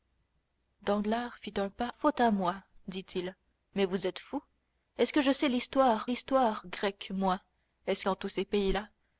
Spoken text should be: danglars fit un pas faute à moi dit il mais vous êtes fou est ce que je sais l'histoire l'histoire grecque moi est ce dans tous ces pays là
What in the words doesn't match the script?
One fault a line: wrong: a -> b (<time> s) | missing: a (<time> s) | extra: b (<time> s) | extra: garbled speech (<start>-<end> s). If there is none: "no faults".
no faults